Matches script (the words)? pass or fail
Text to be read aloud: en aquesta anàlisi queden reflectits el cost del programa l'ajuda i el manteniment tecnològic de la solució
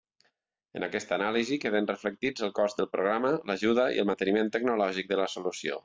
pass